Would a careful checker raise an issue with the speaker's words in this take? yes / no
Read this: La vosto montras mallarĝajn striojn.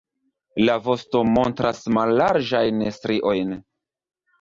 no